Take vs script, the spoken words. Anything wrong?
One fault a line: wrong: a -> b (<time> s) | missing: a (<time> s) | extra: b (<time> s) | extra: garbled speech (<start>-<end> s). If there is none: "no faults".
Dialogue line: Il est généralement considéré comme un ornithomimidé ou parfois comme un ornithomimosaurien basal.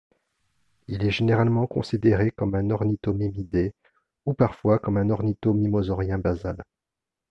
no faults